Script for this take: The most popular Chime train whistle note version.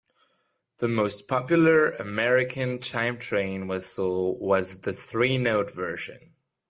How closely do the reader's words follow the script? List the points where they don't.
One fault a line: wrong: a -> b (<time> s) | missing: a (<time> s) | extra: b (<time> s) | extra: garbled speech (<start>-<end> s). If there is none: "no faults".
extra: American (1.9 s)
extra: was the three (4.4 s)